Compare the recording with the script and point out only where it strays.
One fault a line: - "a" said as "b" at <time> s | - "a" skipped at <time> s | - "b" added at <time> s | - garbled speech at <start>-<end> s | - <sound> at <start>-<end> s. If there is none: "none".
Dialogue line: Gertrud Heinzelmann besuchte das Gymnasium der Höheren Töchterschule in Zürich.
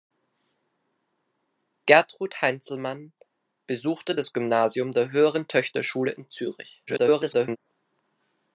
- garbled speech at 6.9-7.6 s